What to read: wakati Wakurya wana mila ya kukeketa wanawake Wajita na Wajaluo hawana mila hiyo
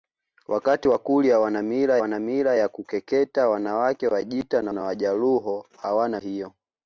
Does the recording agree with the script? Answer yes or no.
no